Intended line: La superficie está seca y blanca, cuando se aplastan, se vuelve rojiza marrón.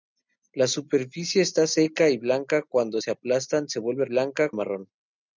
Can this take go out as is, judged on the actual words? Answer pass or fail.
fail